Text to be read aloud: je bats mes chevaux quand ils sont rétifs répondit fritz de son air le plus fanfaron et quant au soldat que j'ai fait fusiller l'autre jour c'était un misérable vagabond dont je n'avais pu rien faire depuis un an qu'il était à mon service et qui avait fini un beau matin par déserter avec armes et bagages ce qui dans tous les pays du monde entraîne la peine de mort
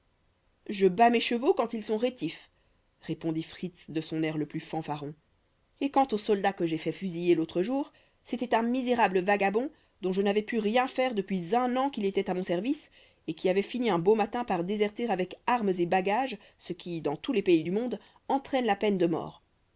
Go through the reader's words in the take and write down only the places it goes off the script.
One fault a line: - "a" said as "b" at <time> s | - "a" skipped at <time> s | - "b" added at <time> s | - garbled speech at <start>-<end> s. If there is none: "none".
none